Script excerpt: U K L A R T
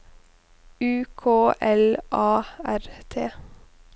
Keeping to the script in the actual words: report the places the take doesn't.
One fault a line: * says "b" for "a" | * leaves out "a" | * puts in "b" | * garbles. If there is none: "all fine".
all fine